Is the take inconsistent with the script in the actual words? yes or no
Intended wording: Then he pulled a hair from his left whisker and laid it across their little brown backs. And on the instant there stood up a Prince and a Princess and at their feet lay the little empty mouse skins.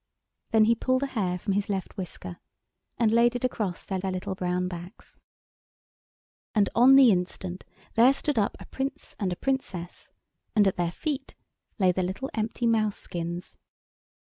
yes